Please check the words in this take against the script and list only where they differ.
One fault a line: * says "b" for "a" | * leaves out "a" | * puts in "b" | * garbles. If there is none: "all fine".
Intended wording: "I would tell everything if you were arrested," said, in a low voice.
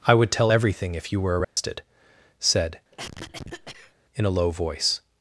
all fine